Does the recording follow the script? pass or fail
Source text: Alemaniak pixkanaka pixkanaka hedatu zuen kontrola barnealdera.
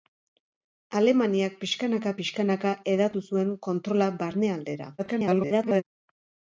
fail